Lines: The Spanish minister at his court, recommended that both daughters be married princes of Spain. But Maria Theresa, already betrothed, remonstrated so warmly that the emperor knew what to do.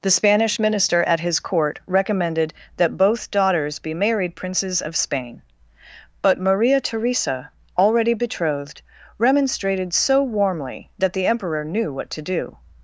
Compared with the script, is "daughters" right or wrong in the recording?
right